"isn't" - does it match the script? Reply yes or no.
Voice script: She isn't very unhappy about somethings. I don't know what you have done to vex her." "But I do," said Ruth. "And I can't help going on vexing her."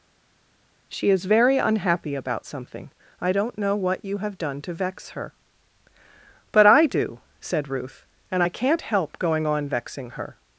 no